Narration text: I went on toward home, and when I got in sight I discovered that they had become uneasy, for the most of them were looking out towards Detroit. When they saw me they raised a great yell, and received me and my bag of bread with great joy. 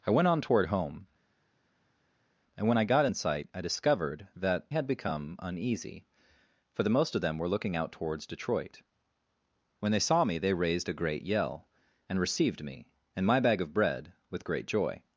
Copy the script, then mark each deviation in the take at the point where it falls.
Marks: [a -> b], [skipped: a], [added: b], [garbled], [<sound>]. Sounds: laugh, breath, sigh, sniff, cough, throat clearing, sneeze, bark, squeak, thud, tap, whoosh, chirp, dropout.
I went on toward home, and when I got in sight I discovered that [skipped: they] had become uneasy, for the most of them were looking out towards Detroit. When they saw me they raised a great yell, and received me and my bag of bread with great joy.